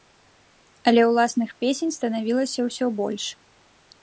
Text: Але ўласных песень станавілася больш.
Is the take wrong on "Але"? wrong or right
right